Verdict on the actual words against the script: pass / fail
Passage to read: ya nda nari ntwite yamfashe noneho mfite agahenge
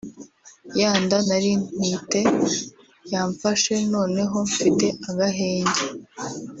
pass